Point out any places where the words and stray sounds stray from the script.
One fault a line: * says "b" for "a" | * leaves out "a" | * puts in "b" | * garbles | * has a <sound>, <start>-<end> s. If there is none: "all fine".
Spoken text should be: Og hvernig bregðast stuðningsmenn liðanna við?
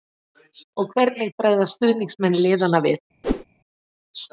* has a whoosh, 3.2-3.4 s